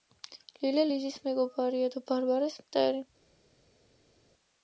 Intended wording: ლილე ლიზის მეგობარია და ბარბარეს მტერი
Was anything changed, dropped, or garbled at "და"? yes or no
no